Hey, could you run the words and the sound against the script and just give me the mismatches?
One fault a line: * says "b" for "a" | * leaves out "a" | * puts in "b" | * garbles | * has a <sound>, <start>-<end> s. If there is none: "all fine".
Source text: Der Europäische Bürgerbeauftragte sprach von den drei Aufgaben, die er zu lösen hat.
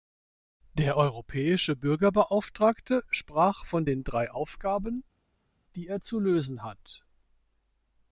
all fine